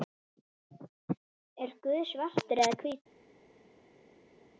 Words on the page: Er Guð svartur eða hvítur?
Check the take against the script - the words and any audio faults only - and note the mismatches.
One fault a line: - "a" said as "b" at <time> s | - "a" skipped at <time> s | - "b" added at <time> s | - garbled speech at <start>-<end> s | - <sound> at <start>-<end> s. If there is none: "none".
none